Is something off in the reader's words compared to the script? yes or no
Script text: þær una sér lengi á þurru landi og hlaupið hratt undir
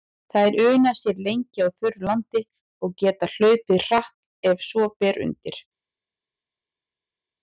yes